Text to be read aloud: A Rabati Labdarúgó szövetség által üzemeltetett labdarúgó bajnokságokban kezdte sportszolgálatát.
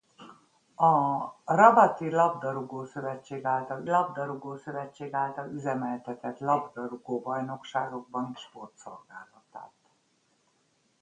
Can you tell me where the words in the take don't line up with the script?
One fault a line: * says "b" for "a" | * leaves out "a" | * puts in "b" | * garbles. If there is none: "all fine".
* puts in "Labdarúgó szövetség által"
* leaves out "kezdte"